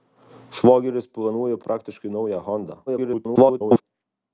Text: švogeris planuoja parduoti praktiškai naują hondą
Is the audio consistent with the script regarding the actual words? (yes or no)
no